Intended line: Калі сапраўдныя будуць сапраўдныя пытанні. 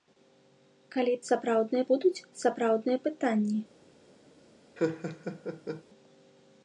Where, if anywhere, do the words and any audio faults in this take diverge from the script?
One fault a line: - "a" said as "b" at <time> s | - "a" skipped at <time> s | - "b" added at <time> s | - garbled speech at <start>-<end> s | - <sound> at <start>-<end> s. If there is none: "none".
- laugh at 4.8-5.8 s